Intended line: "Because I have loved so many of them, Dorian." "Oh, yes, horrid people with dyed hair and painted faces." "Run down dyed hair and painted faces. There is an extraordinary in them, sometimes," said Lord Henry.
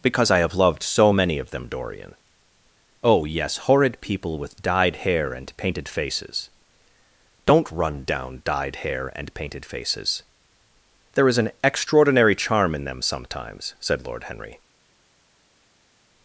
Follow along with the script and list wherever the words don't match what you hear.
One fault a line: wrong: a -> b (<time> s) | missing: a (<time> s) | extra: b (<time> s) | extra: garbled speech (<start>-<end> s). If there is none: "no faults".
extra: Don't (7.5 s)
extra: charm (12.4 s)